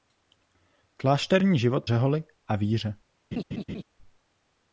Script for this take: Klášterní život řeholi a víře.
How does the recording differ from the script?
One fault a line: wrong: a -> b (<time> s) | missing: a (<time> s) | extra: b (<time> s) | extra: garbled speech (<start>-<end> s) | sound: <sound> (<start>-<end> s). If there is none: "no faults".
sound: laugh (3.3-3.8 s)